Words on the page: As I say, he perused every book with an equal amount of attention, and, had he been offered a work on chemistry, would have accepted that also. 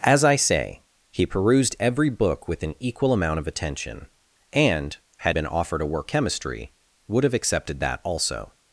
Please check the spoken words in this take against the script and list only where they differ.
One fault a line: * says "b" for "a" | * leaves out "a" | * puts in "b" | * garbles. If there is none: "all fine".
* leaves out "he"
* leaves out "on"